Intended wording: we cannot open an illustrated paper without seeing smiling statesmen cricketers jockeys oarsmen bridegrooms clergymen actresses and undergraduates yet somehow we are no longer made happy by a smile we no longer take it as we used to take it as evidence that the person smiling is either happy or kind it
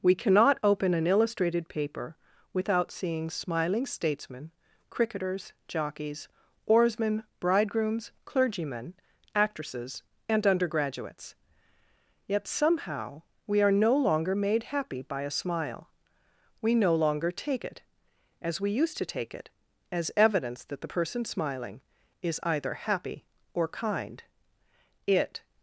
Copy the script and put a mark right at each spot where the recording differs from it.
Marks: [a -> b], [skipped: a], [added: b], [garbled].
we cannot open an illustrated paper without seeing smiling statesmen cricketers jockeys oarsmen bridegrooms clergymen actresses and undergraduates yet somehow we are no longer made happy by a smile we no longer take it as we used to take it as evidence that the person smiling is either happy or kind it